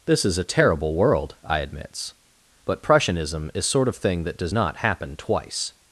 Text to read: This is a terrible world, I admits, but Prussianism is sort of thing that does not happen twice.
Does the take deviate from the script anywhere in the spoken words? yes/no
no